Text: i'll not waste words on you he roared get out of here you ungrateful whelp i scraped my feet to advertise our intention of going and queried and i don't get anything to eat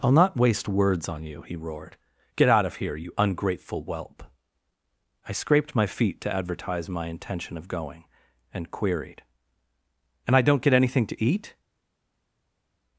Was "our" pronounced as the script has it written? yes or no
no